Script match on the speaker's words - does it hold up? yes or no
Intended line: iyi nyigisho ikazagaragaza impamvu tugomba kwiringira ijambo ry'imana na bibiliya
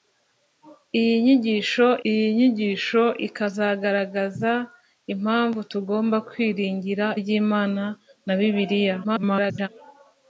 no